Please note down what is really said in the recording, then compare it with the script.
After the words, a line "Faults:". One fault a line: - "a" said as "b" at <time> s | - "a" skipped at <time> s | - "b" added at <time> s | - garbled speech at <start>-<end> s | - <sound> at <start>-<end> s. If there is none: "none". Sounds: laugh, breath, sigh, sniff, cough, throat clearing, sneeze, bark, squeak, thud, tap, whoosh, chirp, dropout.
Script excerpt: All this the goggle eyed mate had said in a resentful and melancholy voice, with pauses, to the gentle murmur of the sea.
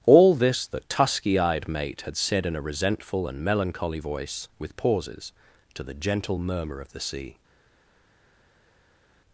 All this the tusky eyed mate had said in a resentful and melancholy voice, with pauses, to the gentle murmur of the sea.
Faults:
- "goggle" said as "tusky" at 0.8 s